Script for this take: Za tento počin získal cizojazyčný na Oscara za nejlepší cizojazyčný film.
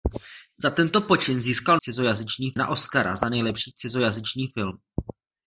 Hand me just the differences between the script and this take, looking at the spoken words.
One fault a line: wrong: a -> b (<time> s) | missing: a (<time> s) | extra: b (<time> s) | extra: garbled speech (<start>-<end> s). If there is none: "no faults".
no faults